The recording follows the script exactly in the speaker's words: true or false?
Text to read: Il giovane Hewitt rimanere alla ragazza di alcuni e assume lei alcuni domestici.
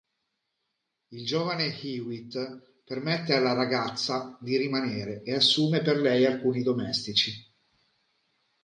false